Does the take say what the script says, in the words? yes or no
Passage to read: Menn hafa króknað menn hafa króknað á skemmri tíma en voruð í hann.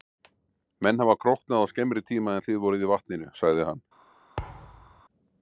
no